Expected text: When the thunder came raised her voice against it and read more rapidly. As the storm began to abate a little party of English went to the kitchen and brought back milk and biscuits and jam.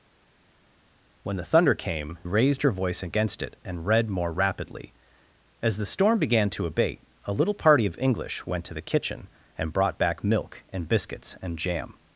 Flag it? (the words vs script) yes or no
no